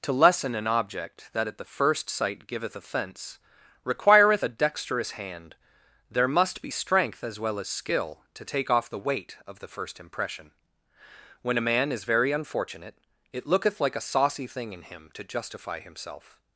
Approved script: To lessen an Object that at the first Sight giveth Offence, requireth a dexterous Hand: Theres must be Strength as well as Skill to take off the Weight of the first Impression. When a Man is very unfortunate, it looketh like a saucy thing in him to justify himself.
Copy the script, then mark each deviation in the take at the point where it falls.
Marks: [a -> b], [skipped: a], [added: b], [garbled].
To lessen an Object that at the first Sight giveth Offence, requireth a dexterous Hand: [Theres -> There] must be Strength as well as Skill to take off the Weight of the first Impression. When a Man is very unfortunate, it looketh like a saucy thing in him to justify himself.